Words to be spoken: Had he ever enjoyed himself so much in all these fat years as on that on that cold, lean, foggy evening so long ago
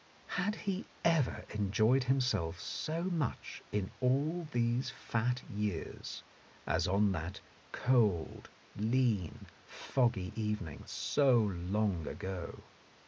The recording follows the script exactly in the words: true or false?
false